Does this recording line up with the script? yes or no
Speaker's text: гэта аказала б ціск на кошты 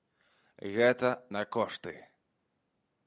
no